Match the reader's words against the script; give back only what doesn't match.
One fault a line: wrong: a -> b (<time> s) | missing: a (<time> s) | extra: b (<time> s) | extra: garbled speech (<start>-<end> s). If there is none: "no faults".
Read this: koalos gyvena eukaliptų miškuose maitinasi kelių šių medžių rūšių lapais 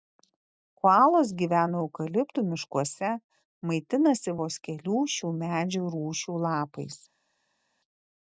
extra: vos (4.4 s)